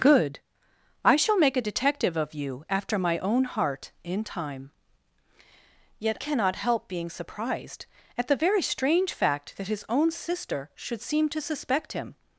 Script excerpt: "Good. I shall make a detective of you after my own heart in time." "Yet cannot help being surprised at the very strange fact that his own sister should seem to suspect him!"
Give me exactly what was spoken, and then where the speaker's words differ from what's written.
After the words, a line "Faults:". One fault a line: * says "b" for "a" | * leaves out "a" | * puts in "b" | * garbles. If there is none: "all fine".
"Good. I shall make a detective of you after my own heart in time." "Yet cannot help being surprised at the very strange fact that his own sister should seem to suspect him!"
Faults:
all fine